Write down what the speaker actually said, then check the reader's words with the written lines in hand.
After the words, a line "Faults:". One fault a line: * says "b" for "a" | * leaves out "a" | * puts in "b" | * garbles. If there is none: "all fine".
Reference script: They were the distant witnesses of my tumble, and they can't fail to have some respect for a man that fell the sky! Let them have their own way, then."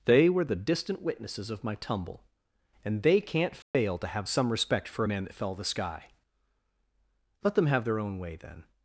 They were the distant witnesses of my tumble, and they can't fail to have some respect for a man that fell the sky! Let them have their own way, then."
Faults:
all fine